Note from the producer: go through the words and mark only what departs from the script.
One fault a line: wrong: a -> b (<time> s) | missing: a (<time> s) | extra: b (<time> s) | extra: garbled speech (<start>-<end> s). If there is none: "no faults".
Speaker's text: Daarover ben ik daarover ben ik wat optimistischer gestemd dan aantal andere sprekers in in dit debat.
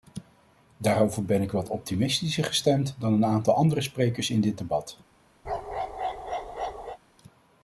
missing: daarover ben ik (1.5 s)
extra: een (3.1 s)
missing: in (4.4 s)